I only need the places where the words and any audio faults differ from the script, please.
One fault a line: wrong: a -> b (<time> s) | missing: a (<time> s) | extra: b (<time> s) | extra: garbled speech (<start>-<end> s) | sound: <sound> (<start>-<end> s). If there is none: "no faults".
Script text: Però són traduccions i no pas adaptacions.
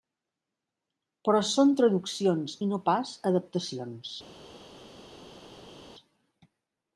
no faults